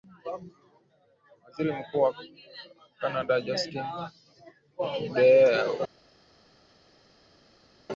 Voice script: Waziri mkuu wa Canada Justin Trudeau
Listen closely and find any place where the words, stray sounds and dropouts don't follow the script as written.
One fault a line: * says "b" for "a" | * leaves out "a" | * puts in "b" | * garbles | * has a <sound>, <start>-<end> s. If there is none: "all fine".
all fine